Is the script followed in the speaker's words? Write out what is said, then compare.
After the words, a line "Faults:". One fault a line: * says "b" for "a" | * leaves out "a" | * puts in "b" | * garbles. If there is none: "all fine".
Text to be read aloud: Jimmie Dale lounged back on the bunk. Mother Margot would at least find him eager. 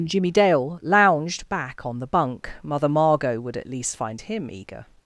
Jimmie Dale lounged back on the bunk. Mother Margot would at least find him eager.
Faults:
all fine